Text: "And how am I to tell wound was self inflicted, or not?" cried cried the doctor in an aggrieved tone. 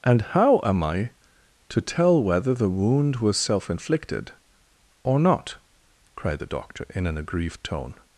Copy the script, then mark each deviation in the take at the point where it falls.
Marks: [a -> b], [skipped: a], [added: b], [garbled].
"And how am I to tell [added: whether the] wound was self inflicted, or not?" cried [skipped: cried] the doctor in an aggrieved tone.